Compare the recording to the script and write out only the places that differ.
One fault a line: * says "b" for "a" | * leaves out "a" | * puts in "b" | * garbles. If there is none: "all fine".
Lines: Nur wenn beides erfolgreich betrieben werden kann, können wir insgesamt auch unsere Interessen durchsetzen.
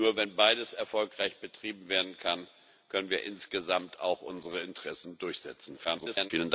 * garbles